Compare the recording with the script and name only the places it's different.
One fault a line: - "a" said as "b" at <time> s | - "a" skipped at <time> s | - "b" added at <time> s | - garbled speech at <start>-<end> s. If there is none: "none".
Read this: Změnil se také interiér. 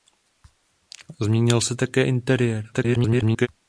- garbled speech at 2.7-3.5 s